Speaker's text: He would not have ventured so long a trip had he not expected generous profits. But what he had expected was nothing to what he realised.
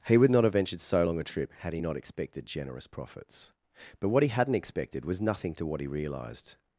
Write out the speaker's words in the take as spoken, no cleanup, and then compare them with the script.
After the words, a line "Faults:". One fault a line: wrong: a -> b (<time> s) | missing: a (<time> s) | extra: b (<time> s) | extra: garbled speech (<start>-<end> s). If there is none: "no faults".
He would not have ventured so long a trip had he not expected generous profits. But what he hadn't expected was nothing to what he realised.
Faults:
wrong: had -> hadn't (4.3 s)